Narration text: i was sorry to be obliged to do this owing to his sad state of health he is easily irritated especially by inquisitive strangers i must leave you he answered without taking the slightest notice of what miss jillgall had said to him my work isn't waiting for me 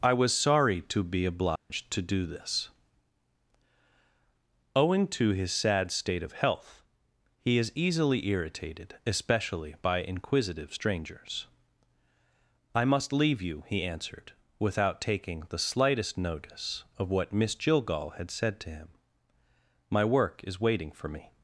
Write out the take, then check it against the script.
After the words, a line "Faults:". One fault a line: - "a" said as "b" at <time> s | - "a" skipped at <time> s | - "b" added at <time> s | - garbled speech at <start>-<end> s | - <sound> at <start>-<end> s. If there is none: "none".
i was sorry to be obliged to do this owing to his sad state of health he is easily irritated especially by inquisitive strangers i must leave you he answered without taking the slightest notice of what miss jillgall had said to him my work is waiting for me
Faults:
- dropout at 1.6-1.7 s
- "isn't" said as "is" at 20.5 s